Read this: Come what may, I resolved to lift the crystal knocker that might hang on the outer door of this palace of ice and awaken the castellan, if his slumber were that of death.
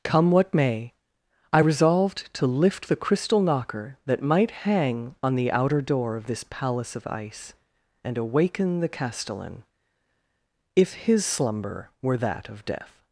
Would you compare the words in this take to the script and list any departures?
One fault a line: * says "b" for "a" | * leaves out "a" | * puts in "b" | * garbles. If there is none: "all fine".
all fine